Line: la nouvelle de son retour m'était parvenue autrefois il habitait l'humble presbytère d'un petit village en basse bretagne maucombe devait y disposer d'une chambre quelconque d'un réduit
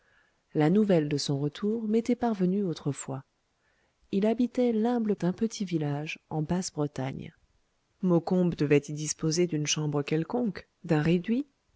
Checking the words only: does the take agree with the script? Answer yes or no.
no